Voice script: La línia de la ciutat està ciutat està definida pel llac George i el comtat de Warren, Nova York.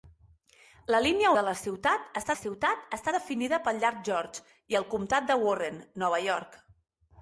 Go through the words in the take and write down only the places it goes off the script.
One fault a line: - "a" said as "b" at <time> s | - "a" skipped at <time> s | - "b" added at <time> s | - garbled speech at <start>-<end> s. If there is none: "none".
none